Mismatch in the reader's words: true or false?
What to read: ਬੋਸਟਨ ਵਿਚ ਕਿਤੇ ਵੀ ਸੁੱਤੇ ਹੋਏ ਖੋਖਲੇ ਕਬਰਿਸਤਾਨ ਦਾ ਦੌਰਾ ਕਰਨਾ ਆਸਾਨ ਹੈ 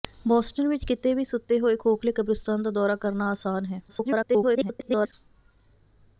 true